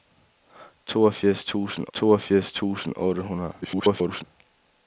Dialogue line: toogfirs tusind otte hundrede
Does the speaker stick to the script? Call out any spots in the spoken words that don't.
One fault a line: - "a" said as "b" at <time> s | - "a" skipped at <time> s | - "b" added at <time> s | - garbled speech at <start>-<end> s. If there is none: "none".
- "toogfirs tusind" added at 1.9 s
- garbled speech at 3.6-4.2 s